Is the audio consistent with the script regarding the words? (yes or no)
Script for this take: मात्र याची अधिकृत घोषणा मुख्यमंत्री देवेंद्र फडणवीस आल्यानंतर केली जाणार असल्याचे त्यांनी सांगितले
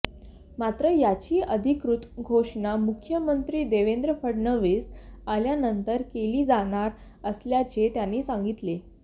yes